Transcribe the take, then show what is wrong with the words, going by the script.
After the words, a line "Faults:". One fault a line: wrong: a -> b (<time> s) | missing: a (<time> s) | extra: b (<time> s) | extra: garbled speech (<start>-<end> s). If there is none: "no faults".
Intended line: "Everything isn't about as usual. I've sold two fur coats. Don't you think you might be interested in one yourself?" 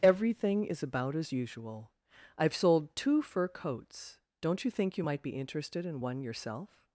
"Everything is about as usual. I've sold two fur coats. Don't you think you might be interested in one yourself?"
Faults:
wrong: isn't -> is (0.7 s)